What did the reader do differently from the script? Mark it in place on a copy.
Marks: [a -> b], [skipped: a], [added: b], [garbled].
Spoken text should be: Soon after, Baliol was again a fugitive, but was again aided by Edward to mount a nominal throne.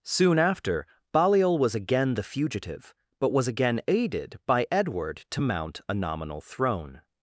Soon after, Baliol was again [a -> the] fugitive, but was again aided by Edward to mount a nominal throne.